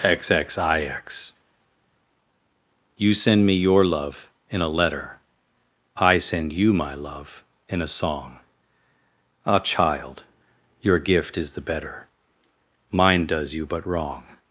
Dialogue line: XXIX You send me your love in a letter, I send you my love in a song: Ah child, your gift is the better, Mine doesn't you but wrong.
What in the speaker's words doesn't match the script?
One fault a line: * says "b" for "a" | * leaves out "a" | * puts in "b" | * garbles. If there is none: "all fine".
* says "does" for "doesn't"